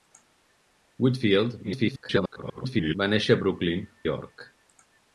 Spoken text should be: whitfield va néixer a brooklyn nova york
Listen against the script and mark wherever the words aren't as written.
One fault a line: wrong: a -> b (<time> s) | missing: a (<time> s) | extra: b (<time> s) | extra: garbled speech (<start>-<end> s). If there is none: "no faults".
extra: garbled speech (1.6-3.0 s)
missing: nova (3.9 s)